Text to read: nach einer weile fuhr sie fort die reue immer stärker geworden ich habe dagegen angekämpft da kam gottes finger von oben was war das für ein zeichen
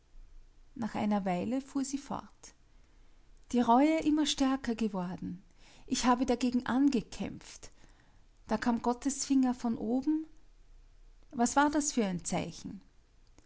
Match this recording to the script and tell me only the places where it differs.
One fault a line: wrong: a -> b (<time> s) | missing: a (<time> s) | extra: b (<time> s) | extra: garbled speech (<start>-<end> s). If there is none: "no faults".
no faults